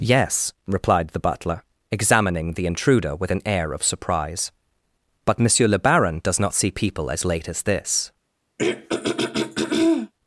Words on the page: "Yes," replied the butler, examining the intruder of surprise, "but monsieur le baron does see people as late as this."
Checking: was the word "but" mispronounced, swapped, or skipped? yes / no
no